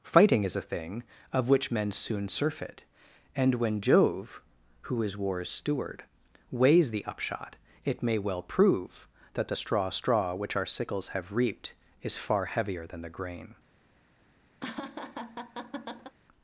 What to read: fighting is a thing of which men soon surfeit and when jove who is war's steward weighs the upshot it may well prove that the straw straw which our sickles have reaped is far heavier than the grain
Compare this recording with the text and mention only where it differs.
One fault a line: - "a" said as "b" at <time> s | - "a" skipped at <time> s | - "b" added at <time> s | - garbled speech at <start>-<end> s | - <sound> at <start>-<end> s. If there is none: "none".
- laugh at 14.6-16.2 s